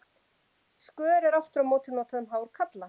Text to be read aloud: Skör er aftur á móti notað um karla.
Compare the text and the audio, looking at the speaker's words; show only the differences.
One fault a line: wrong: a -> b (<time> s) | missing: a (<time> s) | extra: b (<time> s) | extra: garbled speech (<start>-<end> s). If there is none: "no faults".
extra: hár (2.4 s)